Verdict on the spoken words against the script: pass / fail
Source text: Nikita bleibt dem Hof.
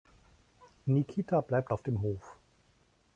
fail